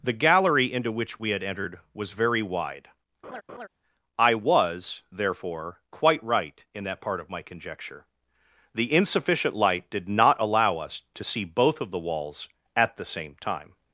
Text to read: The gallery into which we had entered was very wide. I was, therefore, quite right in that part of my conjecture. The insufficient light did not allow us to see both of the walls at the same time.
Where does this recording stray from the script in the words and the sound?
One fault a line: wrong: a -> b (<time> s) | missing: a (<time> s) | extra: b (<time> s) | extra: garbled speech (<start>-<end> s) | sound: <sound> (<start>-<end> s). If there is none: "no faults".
sound: laugh (3.2-3.7 s)